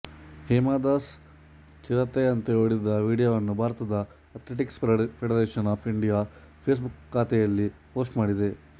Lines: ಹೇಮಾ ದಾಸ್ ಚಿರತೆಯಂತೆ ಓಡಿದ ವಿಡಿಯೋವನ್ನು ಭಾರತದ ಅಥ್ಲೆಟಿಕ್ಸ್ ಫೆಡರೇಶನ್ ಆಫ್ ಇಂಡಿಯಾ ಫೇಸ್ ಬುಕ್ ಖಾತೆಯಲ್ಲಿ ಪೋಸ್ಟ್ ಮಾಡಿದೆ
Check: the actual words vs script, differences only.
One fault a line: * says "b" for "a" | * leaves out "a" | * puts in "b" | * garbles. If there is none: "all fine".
all fine